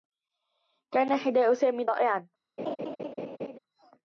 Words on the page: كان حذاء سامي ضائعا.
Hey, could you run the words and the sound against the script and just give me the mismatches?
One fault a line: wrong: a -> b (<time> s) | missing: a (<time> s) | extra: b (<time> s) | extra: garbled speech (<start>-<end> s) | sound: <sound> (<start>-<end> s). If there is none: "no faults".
sound: laugh (2.6-3.6 s)